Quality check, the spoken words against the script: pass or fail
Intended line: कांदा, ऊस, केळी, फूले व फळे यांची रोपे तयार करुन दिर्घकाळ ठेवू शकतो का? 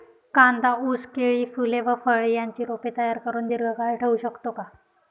pass